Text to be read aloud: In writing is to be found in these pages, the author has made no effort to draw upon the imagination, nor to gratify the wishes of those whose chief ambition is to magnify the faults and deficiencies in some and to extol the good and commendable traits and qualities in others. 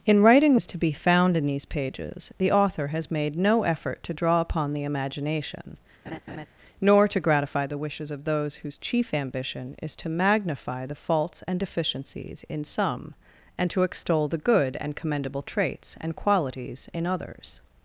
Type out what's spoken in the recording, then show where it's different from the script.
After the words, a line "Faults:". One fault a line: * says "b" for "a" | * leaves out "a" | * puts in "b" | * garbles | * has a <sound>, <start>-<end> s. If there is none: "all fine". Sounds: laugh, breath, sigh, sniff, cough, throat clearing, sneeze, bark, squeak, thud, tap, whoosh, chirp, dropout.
In writing is to be found in these pages, the author has made no effort to draw upon the imagination, nor to gratify the wishes of those whose chief ambition is to magnify the faults and deficiencies in some and to extol the good and commendable traits and qualities in others.
Faults:
* has a laugh, 6.1-6.5 s